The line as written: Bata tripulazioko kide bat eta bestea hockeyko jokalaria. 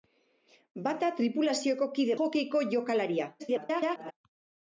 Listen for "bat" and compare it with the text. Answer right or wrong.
wrong